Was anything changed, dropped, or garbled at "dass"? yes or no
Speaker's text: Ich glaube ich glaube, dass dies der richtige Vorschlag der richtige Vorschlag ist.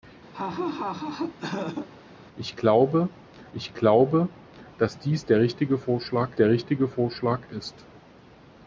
no